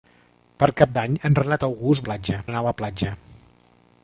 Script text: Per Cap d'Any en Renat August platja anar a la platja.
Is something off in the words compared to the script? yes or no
no